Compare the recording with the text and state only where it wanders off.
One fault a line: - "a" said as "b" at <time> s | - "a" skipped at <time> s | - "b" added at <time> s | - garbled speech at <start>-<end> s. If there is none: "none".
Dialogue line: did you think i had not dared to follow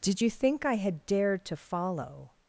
- "not" skipped at 1.1 s